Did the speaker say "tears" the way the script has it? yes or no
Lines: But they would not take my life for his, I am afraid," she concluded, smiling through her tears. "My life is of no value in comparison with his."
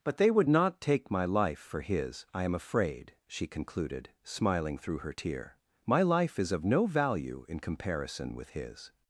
no